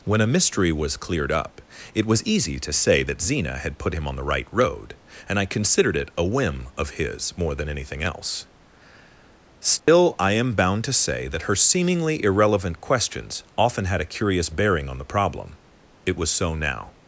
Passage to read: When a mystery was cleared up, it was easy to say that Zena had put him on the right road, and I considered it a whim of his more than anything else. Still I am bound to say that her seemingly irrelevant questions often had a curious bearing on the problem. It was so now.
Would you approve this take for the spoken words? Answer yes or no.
yes